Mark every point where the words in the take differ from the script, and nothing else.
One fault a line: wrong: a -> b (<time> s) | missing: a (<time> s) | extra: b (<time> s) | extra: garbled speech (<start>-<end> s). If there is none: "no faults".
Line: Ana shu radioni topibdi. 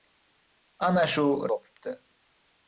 missing: radioni (1.2 s)